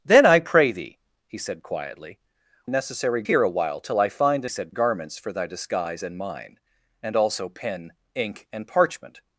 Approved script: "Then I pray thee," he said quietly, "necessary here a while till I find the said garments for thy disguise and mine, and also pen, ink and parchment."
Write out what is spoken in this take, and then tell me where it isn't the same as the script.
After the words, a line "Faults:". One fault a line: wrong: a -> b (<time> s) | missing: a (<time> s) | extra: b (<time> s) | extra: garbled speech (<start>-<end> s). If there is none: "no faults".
"Then I pray thee," he said quietly, "necessary here a while till I find the said garments for thy disguise and mine, and also pen, ink and parchment."
Faults:
no faults